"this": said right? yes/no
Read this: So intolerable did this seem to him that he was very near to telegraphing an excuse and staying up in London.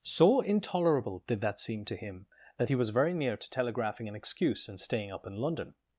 no